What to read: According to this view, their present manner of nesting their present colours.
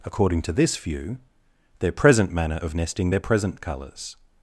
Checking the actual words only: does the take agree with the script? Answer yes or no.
yes